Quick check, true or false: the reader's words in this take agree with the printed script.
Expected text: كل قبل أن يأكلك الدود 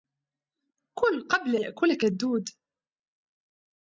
false